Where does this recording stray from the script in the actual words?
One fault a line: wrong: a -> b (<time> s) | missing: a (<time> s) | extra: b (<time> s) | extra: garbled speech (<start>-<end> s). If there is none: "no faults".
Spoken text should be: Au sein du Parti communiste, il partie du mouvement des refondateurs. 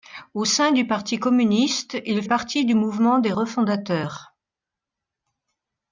no faults